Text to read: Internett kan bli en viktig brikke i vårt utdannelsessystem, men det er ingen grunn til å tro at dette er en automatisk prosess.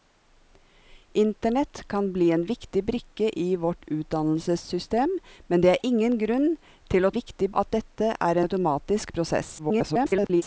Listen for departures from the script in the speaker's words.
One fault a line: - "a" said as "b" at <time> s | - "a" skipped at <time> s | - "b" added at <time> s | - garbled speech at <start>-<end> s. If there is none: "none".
- "tro" said as "viktig" at 7.1 s
- "en" skipped at 8.4 s
- garbled speech at 9.6-10.4 s